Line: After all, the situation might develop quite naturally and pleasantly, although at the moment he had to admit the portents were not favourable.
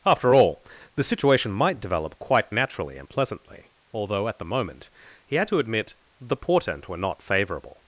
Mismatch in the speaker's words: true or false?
true